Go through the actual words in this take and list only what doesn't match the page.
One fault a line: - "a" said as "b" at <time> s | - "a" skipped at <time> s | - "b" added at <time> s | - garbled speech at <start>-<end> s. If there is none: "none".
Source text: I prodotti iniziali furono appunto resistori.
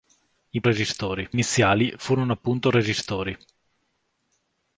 - "prodotti" said as "resistori" at 0.6 s